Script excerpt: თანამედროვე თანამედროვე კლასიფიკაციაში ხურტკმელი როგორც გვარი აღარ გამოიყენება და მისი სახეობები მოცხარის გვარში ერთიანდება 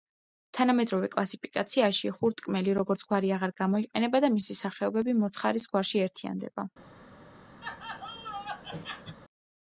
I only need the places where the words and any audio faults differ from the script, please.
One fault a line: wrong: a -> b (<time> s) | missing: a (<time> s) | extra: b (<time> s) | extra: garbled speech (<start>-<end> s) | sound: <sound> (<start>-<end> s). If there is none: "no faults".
missing: თანამედროვე (1.1 s)
sound: laugh (7.6-9.2 s)